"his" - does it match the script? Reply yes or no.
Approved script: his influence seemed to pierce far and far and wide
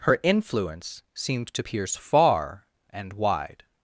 no